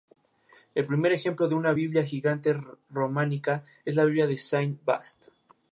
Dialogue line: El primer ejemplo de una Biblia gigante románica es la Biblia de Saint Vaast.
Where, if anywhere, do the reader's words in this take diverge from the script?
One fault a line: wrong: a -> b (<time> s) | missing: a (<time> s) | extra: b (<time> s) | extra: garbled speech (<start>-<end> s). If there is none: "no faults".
no faults